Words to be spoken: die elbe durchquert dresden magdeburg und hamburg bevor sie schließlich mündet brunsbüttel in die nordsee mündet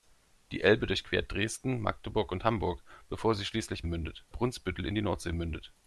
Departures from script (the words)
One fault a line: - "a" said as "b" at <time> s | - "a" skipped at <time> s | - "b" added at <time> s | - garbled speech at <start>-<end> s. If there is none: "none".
none